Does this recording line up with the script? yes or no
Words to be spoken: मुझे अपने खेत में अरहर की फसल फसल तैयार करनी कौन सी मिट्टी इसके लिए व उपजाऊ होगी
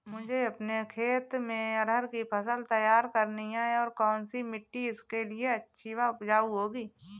no